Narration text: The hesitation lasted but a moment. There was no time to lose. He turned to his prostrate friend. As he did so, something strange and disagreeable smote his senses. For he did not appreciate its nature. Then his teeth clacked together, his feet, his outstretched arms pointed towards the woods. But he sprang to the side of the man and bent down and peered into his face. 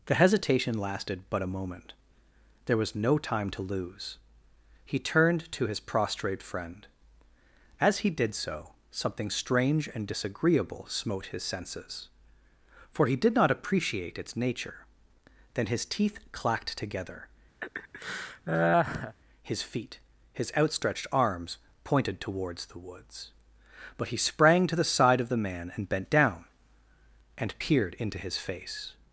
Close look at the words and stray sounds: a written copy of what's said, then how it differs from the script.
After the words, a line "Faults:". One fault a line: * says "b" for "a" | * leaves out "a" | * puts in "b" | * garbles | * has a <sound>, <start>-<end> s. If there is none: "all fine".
The hesitation lasted but a moment. There was no time to lose. He turned to his prostrate friend. As he did so, something strange and disagreeable smote his senses. For he did not appreciate its nature. Then his teeth clacked together, his feet, his outstretched arms pointed towards the woods. But he sprang to the side of the man and bent down and peered into his face.
Faults:
* has a laugh, 17.6-19.2 s